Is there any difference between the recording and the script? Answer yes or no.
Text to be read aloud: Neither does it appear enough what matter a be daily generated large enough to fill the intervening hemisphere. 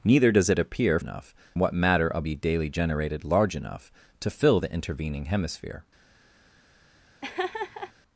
no